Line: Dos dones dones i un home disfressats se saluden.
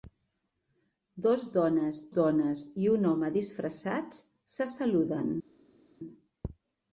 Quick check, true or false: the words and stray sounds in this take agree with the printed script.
true